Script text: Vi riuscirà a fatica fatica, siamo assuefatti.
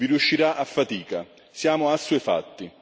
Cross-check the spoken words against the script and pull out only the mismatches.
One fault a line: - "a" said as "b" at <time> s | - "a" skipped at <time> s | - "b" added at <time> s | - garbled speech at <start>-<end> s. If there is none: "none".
- "fatica" skipped at 1.3 s